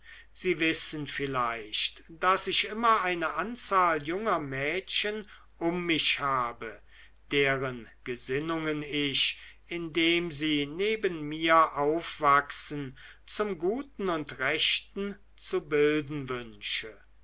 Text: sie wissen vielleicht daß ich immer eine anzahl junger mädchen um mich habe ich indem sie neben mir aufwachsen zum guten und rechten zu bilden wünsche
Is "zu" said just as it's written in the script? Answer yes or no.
yes